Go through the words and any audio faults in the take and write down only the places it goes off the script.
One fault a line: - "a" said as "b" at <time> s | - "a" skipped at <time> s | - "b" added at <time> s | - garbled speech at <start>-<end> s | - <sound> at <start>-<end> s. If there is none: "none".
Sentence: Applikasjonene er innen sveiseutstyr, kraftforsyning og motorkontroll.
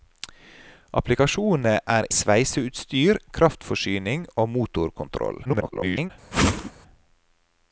- "innen" skipped at 2.1 s
- garbled speech at 5.4-6.1 s
- whoosh at 6.3-6.7 s